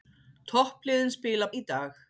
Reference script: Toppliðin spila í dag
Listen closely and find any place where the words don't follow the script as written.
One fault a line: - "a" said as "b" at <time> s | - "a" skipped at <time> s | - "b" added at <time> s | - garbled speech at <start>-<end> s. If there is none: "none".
none